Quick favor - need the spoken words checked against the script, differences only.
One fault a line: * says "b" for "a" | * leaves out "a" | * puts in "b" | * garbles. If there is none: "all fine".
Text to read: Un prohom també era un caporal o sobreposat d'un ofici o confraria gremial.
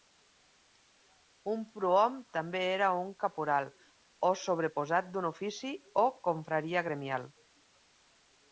all fine